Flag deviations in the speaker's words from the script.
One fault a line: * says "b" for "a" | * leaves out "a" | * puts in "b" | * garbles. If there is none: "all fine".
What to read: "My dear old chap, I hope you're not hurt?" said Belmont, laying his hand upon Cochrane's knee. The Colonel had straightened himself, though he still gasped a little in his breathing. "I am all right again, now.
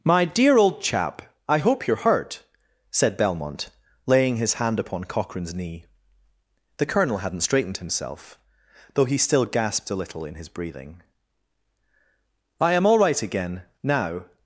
* leaves out "not"
* says "hadn't" for "had"